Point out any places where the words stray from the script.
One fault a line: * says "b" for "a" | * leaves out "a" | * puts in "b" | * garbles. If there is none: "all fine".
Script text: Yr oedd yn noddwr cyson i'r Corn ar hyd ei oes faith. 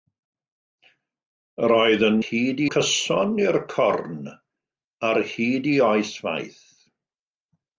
* says "hyd" for "noddwr"